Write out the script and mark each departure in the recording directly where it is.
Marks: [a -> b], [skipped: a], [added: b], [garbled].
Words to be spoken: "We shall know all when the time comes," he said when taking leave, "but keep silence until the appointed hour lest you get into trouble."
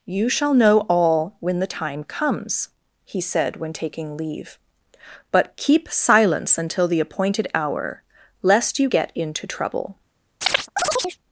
["We -> You] shall know all when the time comes," he said when taking leave, "but keep silence until the appointed hour lest you get into trouble."